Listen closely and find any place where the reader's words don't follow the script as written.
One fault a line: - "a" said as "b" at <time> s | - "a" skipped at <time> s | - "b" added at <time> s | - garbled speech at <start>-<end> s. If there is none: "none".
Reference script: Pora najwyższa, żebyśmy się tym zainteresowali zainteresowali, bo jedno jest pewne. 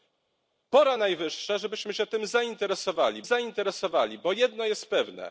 none